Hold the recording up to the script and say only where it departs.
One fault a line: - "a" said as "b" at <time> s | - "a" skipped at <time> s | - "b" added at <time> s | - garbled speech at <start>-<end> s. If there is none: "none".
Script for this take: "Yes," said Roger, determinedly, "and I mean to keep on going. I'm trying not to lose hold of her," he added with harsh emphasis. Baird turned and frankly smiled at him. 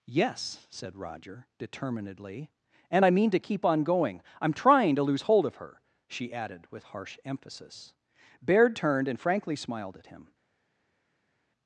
- "not" skipped at 4.9 s
- "he" said as "she" at 6.1 s